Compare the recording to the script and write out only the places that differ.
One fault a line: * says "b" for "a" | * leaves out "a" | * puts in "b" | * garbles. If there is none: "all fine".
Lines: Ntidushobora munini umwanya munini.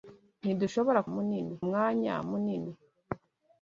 all fine